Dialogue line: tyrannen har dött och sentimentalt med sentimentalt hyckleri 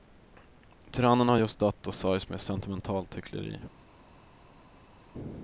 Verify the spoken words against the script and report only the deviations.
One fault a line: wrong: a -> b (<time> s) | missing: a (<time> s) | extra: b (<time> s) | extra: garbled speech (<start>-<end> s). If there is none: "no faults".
extra: just (1.4 s)
wrong: sentimentalt -> sörjs (1.9 s)